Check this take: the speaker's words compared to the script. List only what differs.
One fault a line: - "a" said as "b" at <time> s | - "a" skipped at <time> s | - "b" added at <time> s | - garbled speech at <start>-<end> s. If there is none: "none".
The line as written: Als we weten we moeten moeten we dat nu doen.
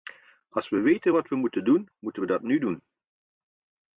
- "wat" added at 1.1 s
- "doen" added at 1.6 s